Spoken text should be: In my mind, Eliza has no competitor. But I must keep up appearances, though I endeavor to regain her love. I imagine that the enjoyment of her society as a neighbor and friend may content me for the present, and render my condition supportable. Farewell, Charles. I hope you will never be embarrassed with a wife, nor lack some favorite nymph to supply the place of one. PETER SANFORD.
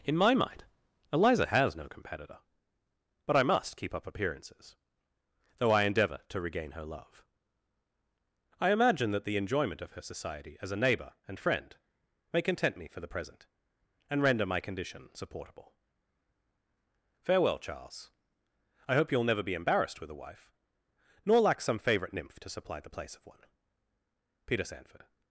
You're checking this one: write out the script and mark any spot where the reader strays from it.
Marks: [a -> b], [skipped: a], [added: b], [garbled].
In my mind, Eliza has no competitor. But I must keep up appearances, though I endeavor to regain her love. I imagine that the enjoyment of her society as a neighbor and friend may content me for the present, and render my condition supportable. Farewell, Charles. I hope you will never be embarrassed with a wife, nor lack some favorite nymph to supply the place of one. PETER SANFORD.